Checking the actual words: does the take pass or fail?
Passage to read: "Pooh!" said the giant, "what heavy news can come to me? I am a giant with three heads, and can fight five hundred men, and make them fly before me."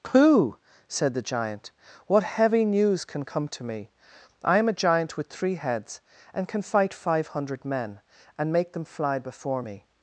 pass